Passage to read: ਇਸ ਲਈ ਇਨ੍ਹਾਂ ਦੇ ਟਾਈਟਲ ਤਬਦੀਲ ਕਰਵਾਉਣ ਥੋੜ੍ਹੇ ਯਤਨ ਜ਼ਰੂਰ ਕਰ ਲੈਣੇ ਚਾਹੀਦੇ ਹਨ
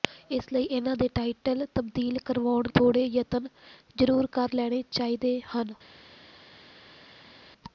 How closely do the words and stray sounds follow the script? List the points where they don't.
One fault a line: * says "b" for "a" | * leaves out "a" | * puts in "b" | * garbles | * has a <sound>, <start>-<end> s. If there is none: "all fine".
all fine